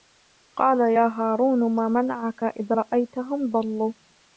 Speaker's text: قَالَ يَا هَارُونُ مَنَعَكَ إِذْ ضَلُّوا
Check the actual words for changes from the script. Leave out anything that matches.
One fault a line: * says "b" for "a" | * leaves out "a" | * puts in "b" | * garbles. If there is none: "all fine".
* puts in "مَا"
* puts in "رَأَيْتَهُمْ"